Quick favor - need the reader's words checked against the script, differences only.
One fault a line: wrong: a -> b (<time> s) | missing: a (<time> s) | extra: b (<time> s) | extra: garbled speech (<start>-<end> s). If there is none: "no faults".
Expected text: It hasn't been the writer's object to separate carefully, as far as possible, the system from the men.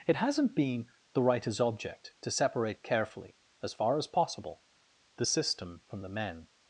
no faults